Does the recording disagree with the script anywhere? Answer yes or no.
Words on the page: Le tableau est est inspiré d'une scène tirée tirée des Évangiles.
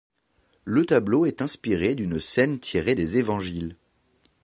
yes